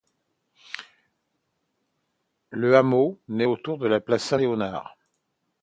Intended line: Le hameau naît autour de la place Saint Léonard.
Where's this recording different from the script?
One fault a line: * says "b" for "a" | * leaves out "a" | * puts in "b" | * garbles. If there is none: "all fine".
all fine